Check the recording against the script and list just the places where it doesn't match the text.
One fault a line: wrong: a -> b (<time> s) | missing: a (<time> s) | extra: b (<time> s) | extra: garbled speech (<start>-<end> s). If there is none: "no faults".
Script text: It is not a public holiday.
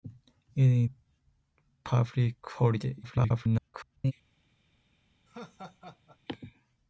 missing: not (0.9 s)
extra: garbled speech (3.0-4.1 s)